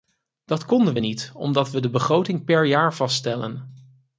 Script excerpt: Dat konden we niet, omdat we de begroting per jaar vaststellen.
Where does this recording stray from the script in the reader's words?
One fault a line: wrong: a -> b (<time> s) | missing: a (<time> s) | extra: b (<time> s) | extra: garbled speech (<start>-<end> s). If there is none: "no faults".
no faults